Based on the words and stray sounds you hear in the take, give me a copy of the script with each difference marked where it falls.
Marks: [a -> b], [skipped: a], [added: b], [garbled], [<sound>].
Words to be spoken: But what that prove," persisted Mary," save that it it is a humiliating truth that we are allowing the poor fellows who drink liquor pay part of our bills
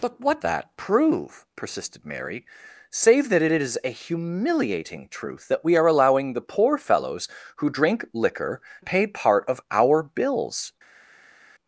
But what that prove," persisted Mary," save that it it is a humiliating truth that we are allowing the poor fellows who drink liquor pay part of our bills